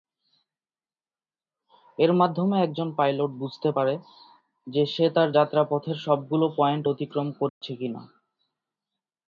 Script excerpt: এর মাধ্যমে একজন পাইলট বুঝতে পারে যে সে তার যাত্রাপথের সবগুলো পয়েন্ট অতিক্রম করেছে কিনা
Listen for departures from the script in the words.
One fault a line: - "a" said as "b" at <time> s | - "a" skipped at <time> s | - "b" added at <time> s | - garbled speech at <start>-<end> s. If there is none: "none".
none